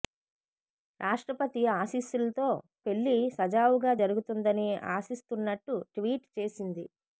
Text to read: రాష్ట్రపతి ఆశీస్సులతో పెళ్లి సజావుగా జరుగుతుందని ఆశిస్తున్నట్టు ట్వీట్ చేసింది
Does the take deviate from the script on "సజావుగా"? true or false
false